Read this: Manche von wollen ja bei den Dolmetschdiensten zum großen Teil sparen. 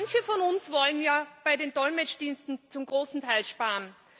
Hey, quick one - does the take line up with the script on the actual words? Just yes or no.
no